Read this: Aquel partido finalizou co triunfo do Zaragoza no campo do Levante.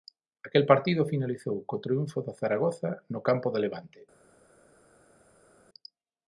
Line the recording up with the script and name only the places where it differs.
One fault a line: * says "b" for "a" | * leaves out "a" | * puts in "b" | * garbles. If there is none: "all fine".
all fine